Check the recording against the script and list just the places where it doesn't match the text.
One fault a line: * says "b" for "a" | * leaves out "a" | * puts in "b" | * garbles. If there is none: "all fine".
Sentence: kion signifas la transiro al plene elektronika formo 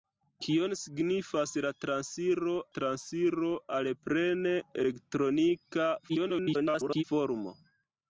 * puts in "transiro"
* garbles